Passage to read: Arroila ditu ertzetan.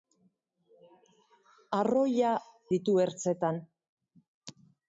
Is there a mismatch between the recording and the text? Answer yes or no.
no